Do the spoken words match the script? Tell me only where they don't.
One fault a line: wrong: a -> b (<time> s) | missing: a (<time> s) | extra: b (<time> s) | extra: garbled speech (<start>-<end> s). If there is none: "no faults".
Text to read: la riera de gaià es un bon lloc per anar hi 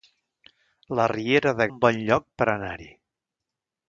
missing: gaià es (1.7 s)